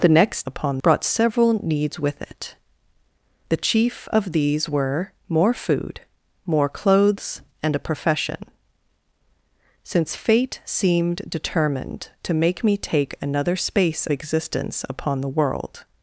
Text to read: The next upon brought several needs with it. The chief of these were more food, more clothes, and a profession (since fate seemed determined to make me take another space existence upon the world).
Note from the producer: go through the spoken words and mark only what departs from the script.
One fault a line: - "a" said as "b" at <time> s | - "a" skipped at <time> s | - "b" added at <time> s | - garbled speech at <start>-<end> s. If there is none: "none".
none